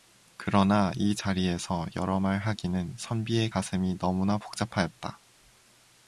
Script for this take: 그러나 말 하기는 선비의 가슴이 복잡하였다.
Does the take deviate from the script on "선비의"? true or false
false